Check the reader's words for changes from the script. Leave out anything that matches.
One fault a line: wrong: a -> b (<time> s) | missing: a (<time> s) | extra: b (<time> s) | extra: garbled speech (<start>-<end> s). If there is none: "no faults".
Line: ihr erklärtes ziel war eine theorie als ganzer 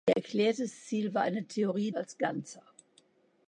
no faults